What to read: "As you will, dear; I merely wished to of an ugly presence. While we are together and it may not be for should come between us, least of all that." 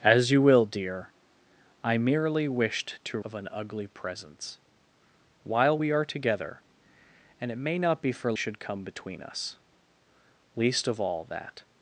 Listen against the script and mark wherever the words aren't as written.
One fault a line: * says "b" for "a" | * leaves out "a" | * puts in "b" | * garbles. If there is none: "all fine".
all fine